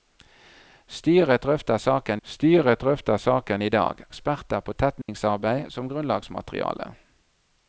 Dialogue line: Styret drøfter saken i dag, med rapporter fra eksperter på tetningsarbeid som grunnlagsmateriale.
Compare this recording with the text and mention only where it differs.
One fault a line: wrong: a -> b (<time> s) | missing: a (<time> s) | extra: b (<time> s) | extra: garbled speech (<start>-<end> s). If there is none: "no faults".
wrong: i dag med rapporter fra -> styret drøfter saken i dag (2.2 s)